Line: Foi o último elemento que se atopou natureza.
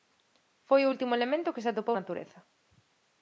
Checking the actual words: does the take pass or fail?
pass